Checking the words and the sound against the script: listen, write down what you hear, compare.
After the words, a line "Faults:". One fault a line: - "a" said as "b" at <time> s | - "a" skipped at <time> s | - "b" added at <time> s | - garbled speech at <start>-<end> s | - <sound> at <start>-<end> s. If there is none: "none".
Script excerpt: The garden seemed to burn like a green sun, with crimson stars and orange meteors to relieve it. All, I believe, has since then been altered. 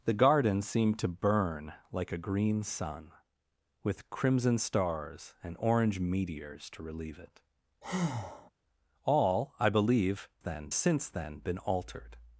The garden seemed to burn like a green sun, with crimson stars and orange meteors to relieve it. All, I believe, then since then been altered.
Faults:
- breath at 7.8-8.5 s
- "has" said as "then" at 10.4 s